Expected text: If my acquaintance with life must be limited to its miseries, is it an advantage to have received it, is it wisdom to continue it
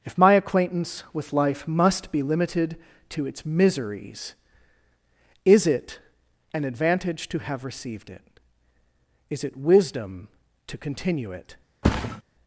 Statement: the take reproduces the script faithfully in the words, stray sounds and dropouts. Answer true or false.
false